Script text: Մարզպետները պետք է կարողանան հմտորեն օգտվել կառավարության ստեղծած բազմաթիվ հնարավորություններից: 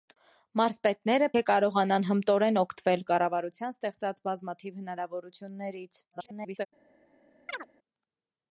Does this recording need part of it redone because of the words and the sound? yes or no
yes